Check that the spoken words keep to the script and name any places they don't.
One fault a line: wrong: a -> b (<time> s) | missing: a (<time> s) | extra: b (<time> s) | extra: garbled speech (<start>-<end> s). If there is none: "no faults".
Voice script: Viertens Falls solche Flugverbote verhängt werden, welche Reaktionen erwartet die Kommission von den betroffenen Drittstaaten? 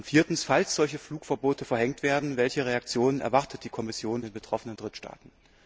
missing: von (4.2 s)